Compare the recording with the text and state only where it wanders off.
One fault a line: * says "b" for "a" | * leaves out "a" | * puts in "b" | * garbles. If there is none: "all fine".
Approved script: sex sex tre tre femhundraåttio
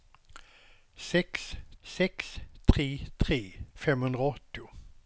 all fine